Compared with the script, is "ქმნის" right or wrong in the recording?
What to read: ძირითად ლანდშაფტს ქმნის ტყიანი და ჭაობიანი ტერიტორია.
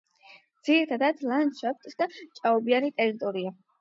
wrong